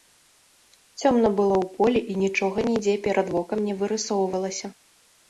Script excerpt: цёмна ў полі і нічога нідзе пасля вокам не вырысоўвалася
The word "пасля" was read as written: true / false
false